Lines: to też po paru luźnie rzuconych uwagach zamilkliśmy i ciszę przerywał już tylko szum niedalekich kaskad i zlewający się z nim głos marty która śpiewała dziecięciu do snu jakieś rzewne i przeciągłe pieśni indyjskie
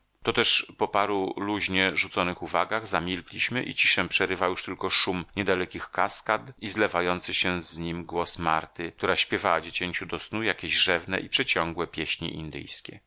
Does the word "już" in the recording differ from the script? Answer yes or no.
no